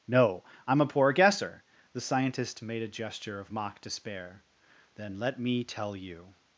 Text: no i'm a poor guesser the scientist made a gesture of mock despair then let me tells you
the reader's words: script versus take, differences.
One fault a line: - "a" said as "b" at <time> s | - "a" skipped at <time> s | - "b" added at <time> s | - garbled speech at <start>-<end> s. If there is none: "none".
- "tells" said as "tell" at 5.6 s